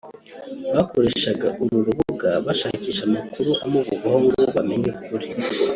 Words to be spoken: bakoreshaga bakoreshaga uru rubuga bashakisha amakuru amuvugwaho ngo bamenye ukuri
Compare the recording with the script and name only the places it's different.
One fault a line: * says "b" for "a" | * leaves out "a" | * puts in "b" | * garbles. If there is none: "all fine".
* leaves out "bakoreshaga"